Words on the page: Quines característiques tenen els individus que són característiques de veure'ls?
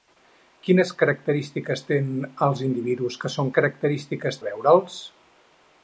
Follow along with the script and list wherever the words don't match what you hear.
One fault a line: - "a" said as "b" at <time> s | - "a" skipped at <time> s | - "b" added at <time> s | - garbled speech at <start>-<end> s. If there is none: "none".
none